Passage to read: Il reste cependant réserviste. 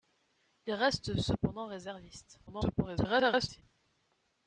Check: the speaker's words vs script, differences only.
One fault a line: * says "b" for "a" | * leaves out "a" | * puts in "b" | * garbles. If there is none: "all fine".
* garbles